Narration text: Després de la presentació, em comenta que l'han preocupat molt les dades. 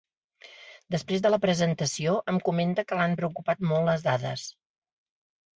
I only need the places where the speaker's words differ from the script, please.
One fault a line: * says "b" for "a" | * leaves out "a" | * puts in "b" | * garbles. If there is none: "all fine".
all fine